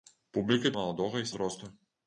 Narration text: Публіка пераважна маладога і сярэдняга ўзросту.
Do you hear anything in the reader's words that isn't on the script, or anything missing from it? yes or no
yes